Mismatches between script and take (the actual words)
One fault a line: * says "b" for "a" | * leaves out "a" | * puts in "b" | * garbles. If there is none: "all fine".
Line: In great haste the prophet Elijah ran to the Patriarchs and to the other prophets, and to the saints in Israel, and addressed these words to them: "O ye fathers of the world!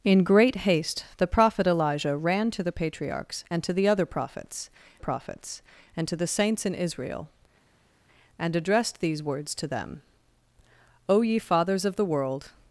* puts in "prophets"